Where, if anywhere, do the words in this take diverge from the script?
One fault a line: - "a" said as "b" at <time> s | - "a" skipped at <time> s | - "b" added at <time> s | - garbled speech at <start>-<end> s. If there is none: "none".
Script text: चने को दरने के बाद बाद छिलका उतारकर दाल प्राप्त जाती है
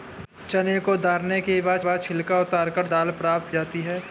none